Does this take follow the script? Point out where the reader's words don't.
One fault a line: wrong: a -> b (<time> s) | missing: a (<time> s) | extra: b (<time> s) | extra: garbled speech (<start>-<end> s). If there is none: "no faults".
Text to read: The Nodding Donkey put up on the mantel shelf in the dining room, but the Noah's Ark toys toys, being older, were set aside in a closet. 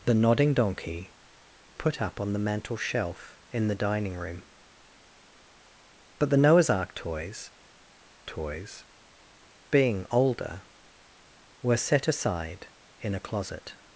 no faults